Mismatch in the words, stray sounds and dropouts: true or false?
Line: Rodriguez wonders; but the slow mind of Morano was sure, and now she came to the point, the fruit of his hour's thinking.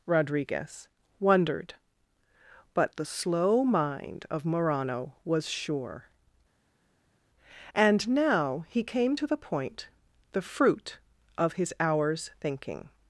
true